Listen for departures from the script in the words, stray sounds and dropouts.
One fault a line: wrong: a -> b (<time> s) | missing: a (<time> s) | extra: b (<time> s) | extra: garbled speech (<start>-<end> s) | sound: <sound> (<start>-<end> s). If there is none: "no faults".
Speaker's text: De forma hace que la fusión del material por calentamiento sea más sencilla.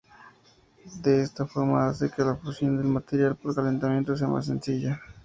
extra: esta (1.2 s)